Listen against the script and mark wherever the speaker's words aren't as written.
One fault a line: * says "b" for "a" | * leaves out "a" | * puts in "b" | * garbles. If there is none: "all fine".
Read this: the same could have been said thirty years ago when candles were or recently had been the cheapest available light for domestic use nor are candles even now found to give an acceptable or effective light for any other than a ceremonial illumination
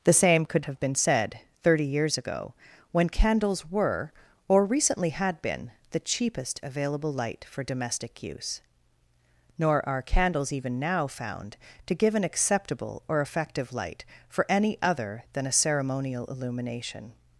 all fine